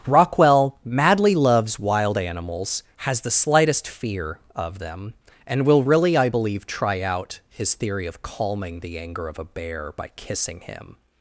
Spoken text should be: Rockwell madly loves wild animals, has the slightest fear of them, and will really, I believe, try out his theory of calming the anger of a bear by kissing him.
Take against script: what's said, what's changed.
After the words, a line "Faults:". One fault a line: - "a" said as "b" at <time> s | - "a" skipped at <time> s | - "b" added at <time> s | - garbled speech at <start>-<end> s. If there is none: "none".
Rockwell madly loves wild animals, has the slightest fear of them, and will really, I believe, try out his theory of calming the anger of a bear by kissing him.
Faults:
none